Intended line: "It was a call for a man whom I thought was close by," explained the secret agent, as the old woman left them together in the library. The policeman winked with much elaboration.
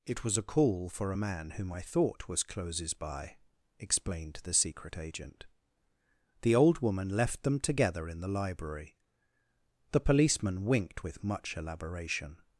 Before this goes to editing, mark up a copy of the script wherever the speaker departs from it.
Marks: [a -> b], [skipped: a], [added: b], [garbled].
"It was a call for a man whom I thought was [close -> closes] by," explained the secret agent, [skipped: as] the old woman left them together in the library. The policeman winked with much elaboration.